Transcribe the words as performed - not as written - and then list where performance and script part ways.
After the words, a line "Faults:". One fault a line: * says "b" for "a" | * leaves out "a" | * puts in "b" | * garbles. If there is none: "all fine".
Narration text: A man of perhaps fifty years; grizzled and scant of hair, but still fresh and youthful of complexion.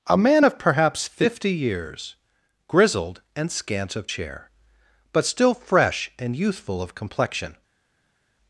A man of perhaps fifty years; grizzled and scant of chair, but still fresh and youthful of complexion.
Faults:
* says "chair" for "hair"